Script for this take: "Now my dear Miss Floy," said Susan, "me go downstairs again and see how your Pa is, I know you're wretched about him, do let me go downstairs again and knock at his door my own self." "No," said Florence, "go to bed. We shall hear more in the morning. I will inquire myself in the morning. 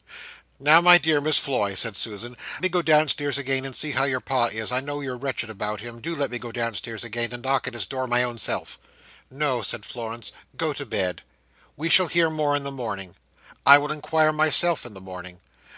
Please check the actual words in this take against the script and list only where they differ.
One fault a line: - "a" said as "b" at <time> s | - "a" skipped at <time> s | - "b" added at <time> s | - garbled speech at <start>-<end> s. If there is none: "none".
none